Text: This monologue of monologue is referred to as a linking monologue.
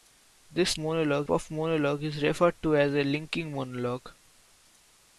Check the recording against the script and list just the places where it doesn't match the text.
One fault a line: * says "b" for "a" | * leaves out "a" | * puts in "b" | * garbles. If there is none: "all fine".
all fine